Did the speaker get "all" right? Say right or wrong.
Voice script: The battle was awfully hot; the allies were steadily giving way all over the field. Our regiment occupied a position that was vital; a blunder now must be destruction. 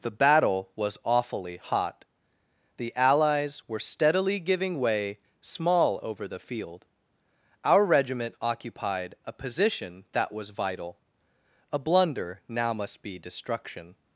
wrong